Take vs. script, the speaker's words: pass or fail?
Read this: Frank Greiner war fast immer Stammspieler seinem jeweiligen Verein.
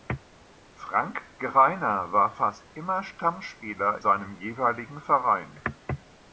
pass